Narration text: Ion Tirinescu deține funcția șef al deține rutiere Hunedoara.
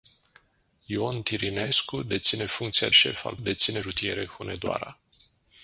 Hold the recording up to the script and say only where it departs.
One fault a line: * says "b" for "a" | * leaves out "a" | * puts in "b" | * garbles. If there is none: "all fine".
all fine